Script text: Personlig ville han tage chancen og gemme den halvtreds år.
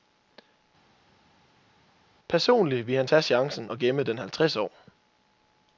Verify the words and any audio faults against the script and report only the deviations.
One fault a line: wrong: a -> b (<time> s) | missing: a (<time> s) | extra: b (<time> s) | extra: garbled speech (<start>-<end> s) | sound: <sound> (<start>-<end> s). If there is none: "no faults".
no faults